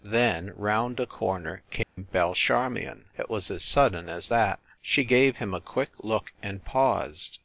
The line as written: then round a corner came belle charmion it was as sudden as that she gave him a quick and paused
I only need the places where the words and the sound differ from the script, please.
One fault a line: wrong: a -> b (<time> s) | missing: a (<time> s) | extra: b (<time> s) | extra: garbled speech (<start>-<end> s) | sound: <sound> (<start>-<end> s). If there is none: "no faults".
sound: dropout (1.8-2.0 s)
extra: look (6.0 s)